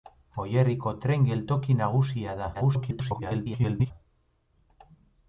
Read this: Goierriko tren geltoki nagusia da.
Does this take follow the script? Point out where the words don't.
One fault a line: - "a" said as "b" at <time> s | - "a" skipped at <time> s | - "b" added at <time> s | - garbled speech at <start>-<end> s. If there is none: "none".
- garbled speech at 2.5-3.9 s